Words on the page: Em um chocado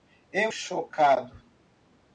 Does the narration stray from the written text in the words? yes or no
no